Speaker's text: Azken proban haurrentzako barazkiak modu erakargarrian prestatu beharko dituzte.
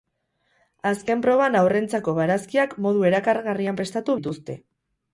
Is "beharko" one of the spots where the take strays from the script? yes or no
yes